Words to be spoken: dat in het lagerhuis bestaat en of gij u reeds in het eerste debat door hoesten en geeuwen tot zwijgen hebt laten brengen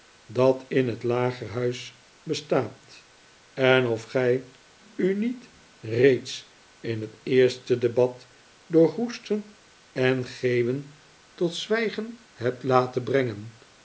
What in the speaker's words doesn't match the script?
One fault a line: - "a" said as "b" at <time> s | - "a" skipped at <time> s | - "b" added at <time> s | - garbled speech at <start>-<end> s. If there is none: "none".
- "niet" added at 5.1 s